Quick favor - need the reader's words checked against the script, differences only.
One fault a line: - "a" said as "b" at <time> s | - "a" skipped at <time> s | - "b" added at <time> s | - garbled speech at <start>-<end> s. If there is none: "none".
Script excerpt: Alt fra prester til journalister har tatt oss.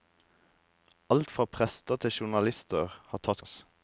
none